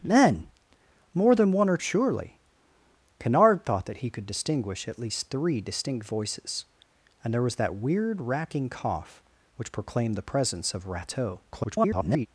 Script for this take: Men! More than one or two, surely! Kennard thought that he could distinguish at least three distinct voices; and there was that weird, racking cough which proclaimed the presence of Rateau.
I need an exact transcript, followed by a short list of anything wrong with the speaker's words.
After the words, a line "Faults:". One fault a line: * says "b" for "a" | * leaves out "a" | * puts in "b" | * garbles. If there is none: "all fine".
Men! More than one or surely! Kennard thought that he could distinguish at least three distinct voices; and there was that weird, racking cough which proclaimed the presence of Rateau. [garbled]
Faults:
* leaves out "two"
* garbles